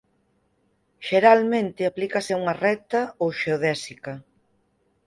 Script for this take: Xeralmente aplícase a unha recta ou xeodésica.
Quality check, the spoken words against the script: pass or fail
pass